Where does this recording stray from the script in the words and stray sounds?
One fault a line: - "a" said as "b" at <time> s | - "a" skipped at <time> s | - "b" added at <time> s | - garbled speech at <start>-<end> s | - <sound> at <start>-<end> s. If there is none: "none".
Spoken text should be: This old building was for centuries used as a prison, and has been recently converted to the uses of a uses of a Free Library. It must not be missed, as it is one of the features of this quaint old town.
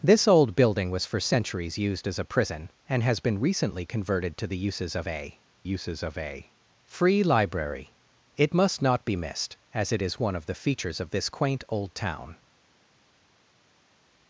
none